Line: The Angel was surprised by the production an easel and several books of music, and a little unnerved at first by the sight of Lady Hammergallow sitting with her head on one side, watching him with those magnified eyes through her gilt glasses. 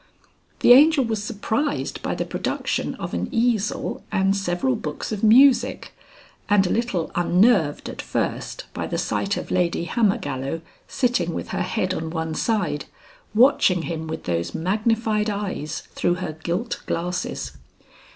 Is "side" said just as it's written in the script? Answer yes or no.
yes